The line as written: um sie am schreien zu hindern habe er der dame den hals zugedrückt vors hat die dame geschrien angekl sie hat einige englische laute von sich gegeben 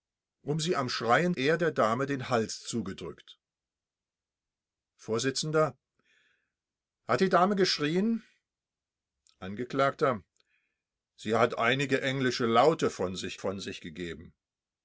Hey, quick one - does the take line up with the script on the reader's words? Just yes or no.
no